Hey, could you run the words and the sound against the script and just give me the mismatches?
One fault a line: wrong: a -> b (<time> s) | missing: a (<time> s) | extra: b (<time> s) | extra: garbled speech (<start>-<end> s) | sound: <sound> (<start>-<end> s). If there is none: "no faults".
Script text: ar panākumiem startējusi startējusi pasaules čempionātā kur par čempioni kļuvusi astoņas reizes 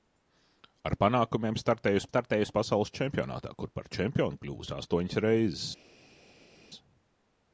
no faults